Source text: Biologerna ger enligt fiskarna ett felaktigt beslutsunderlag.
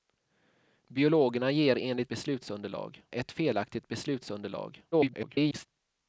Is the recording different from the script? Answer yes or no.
yes